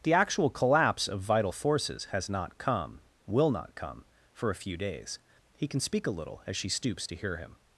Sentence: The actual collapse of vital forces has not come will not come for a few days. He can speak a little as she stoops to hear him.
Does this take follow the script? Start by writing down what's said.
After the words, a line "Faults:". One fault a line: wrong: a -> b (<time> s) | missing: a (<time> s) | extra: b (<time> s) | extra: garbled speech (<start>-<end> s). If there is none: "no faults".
The actual collapse of vital forces has not come will not come for a few days. He can speak a little as she stoops to hear him.
Faults:
no faults